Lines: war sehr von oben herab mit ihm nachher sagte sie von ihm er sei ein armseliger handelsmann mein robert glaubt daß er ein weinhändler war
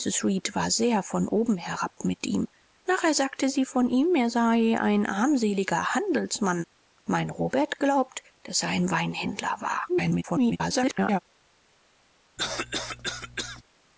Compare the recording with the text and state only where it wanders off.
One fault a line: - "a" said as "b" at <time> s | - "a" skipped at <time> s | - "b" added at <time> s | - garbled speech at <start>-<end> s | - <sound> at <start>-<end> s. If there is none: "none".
- garbled speech at 9.9-11.2 s
- cough at 12.4-13.6 s